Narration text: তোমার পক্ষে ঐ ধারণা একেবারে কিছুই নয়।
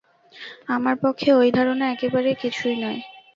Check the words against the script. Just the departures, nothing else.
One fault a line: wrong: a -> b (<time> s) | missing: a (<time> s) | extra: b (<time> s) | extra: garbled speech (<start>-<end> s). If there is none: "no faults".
wrong: তোমার -> আমার (0.7 s)